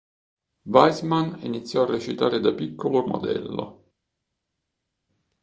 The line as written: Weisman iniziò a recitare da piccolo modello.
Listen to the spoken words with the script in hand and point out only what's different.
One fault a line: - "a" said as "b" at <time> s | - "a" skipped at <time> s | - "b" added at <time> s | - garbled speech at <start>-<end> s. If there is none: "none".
none